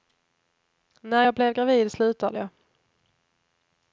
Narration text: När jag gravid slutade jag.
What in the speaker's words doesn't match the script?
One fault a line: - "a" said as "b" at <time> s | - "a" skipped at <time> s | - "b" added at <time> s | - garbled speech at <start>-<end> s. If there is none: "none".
- "blev" added at 1.3 s